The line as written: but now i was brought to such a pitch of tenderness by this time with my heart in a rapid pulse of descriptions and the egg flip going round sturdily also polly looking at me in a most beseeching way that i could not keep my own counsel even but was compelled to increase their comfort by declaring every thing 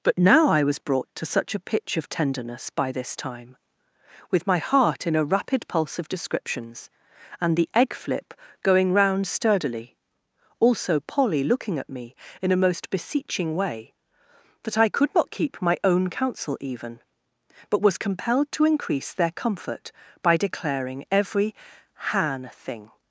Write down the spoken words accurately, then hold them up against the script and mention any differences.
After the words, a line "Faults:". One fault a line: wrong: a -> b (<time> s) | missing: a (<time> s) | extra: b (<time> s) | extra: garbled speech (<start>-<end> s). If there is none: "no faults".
but now i was brought to such a pitch of tenderness by this time with my heart in a rapid pulse of descriptions and the egg flip going round sturdily also polly looking at me in a most beseeching way that i could not keep my own counsel even but was compelled to increase their comfort by declaring every han thing
Faults:
extra: han (21.9 s)